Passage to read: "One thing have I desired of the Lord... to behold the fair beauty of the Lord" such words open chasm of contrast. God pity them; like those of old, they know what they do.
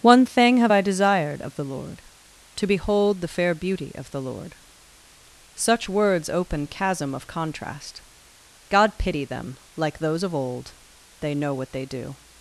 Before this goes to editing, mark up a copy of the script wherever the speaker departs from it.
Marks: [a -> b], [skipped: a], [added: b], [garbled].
"One thing have I desired of the Lord... to behold the fair beauty of the Lord" such words open chasm of contrast. God pity them; like those of old, they know what they do.